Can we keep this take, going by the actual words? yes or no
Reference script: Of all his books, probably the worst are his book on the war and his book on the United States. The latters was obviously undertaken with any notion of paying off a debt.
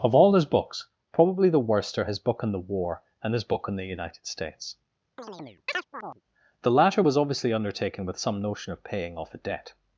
no